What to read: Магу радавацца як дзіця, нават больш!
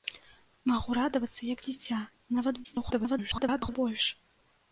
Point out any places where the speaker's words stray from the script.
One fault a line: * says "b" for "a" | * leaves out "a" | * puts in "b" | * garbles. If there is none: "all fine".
* garbles